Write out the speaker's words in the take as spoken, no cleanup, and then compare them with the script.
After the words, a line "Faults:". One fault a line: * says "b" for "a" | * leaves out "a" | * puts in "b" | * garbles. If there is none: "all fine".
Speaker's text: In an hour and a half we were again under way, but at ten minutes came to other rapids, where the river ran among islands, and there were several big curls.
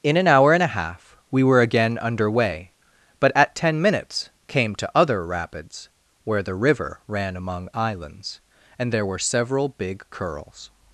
In an hour and a half we were again under way, but at ten minutes came to other rapids, where the river ran among islands, and there were several big curls.
Faults:
all fine